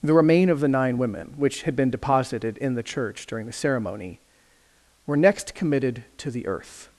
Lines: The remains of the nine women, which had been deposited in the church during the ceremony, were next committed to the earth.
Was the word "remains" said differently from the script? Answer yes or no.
yes